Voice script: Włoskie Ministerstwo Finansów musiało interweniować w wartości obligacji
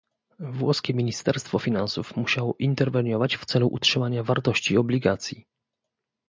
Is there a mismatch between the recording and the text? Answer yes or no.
yes